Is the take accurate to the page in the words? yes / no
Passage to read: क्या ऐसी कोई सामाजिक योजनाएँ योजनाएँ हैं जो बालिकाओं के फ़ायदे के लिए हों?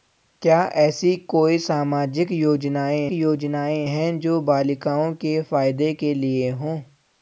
yes